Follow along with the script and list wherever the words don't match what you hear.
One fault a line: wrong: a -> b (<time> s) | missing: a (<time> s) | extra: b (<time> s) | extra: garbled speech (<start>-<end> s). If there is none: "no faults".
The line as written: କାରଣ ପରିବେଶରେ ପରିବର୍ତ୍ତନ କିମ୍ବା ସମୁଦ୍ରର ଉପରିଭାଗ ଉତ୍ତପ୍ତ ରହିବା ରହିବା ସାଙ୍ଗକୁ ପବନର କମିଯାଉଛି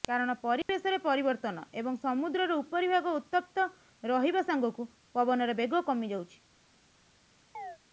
wrong: କିମ୍ବା -> ଏବଂ (1.7 s)
missing: ରହିବା (4.5 s)
extra: ବେଗ (5.6 s)